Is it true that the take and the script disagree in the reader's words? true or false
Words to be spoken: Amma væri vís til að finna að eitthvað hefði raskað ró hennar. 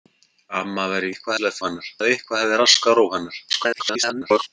true